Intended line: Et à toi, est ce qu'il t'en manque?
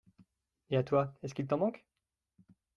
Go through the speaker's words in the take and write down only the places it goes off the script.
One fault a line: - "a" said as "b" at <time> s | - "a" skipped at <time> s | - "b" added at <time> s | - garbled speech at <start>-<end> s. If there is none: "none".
none